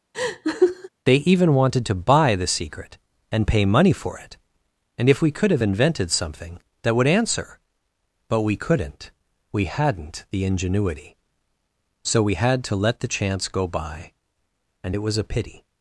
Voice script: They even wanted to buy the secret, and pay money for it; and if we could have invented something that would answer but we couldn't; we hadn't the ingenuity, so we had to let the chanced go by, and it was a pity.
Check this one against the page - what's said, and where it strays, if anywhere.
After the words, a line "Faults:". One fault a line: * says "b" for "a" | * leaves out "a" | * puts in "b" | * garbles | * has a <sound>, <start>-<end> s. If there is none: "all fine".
They even wanted to buy the secret, and pay money for it; and if we could have invented something that would answer but we couldn't; we hadn't the ingenuity, so we had to let the chance go by, and it was a pity.
Faults:
* has a laugh, 0.1-0.9 s
* says "chance" for "chanced"